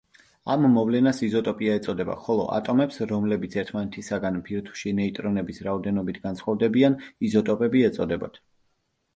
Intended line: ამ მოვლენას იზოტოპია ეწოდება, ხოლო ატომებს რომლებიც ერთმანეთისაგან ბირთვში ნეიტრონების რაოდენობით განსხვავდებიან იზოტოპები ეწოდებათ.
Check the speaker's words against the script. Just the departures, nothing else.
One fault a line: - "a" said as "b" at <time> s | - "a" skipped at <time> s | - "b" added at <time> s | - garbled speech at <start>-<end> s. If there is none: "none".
none